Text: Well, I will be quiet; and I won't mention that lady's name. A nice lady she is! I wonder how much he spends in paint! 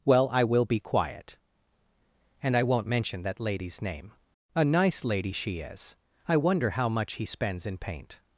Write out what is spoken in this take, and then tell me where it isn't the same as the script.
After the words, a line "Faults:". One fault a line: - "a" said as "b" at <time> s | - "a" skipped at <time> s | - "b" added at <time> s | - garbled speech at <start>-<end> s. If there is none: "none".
Well, I will be quiet; and I won't mention that lady's name. A nice lady she is! I wonder how much he spends in paint!
Faults:
none